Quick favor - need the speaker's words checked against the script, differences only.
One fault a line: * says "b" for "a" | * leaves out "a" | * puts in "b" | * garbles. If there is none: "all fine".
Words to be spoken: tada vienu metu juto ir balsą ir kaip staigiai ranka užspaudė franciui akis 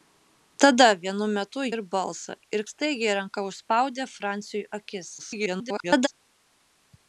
* leaves out "juto"
* leaves out "kaip"
* garbles